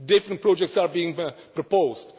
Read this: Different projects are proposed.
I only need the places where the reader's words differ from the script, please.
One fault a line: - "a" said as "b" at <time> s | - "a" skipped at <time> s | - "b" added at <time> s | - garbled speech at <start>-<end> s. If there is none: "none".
- "being" added at 0.9 s